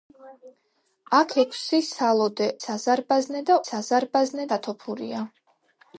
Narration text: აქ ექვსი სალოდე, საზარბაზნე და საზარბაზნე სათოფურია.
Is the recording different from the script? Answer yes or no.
no